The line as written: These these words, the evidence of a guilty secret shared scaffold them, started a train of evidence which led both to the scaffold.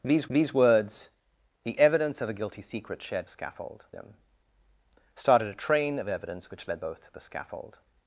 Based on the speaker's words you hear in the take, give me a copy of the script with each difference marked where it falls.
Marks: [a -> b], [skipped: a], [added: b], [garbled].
These these words, the evidence of a guilty secret shared scaffold them, started a train of evidence which led both to the scaffold.